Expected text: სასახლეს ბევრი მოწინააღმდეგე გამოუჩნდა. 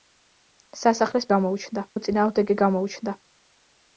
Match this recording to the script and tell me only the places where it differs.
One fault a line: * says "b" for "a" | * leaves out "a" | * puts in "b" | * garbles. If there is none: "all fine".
* says "გამოუჩნდა" for "ბევრი"